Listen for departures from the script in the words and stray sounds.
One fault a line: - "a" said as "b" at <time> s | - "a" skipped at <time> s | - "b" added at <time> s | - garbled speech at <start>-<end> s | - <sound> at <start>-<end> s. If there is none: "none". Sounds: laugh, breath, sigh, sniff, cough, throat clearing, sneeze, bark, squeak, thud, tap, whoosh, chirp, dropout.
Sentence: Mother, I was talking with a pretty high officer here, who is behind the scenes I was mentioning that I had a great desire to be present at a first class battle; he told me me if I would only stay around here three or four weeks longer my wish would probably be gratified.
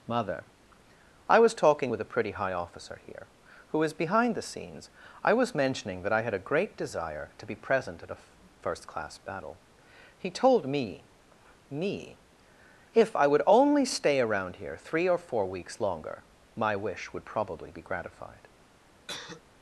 - cough at 19.1-19.4 s